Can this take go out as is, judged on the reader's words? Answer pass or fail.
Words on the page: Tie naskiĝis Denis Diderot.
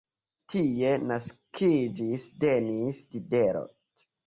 pass